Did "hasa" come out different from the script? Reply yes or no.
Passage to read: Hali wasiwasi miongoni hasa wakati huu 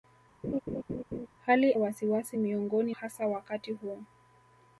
no